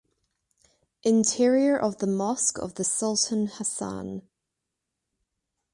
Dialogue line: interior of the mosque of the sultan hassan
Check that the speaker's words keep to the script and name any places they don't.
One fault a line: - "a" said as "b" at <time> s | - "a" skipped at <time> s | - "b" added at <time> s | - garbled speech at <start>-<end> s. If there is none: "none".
none